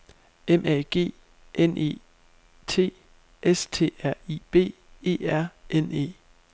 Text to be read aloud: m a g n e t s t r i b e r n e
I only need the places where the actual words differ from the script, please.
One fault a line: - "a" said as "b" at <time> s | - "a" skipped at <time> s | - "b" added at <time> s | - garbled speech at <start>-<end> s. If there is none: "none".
none